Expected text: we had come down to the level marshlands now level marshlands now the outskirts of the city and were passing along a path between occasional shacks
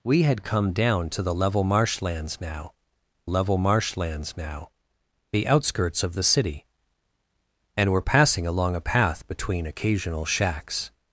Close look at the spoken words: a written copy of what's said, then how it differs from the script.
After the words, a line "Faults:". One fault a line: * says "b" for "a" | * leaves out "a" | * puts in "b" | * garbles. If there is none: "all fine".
we had come down to the level marshlands now level marshlands now the outskirts of the city and were passing along a path between occasional shacks
Faults:
all fine